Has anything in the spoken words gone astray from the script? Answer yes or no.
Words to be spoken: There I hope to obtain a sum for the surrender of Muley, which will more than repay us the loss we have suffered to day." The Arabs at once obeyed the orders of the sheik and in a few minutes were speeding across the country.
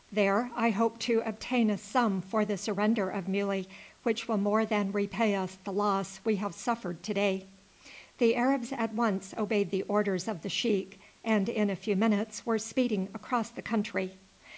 no